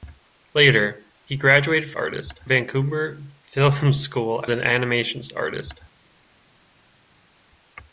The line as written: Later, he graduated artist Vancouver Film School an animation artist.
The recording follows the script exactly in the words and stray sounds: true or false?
true